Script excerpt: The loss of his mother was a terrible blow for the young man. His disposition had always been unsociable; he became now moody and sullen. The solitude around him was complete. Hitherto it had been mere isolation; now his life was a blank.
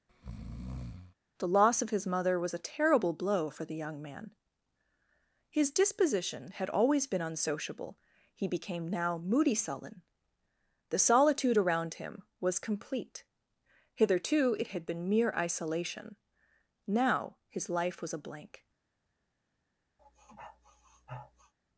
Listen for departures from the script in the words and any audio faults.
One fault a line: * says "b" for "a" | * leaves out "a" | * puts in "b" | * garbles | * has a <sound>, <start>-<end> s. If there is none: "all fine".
* has a breath, 0.1-1.2 s
* leaves out "and"
* has a sniff, 20.0-21.5 s